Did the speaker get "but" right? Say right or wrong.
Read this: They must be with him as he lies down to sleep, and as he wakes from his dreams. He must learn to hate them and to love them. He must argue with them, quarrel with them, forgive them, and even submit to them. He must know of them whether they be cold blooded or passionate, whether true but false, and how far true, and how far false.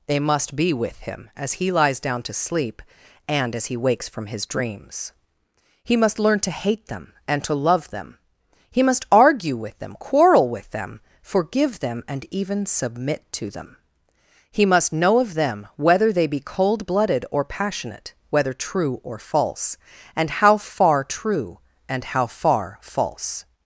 wrong